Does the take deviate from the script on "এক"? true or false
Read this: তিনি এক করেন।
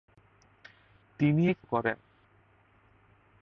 false